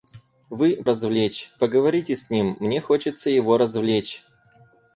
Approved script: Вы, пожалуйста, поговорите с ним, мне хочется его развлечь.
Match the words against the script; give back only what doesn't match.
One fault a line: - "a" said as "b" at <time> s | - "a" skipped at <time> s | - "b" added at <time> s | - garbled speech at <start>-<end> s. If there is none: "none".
- "пожалуйста" said as "развлечь" at 0.9 s